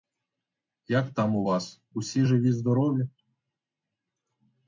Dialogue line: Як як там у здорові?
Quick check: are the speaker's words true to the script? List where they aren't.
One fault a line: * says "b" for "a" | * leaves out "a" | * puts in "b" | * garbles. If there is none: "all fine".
* leaves out "як"
* puts in "вас усі живі"